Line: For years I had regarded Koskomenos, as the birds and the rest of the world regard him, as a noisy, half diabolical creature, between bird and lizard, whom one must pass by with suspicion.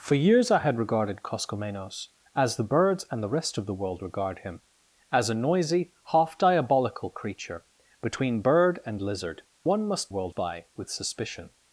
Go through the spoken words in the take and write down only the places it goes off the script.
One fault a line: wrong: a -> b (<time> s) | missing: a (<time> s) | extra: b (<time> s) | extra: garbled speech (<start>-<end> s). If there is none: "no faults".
missing: whom (9.4 s)
wrong: pass -> world (10.1 s)